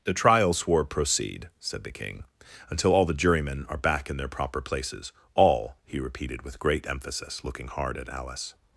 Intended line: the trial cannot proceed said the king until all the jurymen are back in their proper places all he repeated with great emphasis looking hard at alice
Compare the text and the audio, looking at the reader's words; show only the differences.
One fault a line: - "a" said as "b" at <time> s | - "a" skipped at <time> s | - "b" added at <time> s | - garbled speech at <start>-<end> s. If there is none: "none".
- "cannot" said as "swore" at 0.5 s